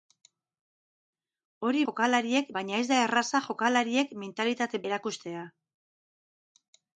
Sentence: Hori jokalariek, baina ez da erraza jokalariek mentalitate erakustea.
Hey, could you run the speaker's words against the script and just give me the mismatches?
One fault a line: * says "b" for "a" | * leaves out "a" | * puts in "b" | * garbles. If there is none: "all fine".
all fine